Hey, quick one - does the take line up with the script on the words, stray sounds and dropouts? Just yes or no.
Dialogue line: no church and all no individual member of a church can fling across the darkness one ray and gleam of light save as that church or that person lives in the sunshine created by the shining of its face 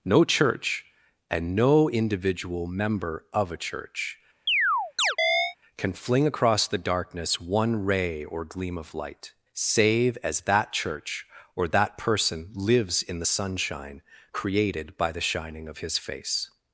no